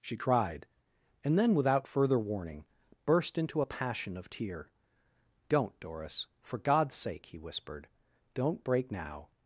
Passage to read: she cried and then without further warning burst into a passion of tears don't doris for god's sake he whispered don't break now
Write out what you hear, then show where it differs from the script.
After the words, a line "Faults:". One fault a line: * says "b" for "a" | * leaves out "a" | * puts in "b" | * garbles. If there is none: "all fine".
she cried and then without further warning burst into a passion of tear don't doris for god's sake he whispered don't break now
Faults:
* says "tear" for "tears"